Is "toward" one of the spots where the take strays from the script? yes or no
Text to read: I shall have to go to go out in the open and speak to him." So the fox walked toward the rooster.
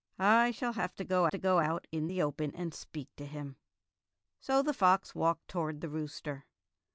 no